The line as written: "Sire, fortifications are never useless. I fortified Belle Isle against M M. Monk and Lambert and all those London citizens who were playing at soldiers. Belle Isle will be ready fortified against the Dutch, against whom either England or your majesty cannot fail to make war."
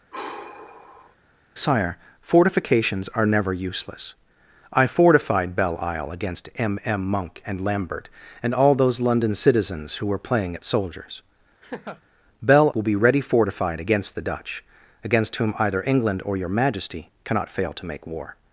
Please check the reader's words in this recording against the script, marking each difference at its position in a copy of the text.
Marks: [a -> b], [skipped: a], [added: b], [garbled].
"Sire, fortifications are never useless. I fortified Belle Isle against M M. Monk and Lambert and all those London citizens who were playing at soldiers. Belle [skipped: Isle] will be ready fortified against the Dutch, against whom either England or your majesty cannot fail to make war."